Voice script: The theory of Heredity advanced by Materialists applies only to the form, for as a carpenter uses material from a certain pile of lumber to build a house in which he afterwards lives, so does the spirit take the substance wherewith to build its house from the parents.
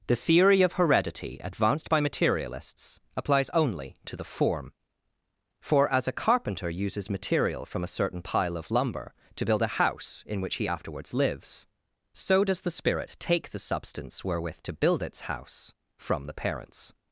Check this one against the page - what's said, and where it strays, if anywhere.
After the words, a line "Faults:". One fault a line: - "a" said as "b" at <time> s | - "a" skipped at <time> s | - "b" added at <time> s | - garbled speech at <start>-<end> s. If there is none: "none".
The theory of Heredity advanced by Materialists applies only to the form, for as a carpenter uses material from a certain pile of lumber to build a house in which he afterwards lives, so does the spirit take the substance wherewith to build its house from the parents.
Faults:
none